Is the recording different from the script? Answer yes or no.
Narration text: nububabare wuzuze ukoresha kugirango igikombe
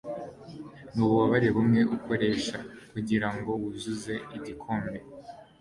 yes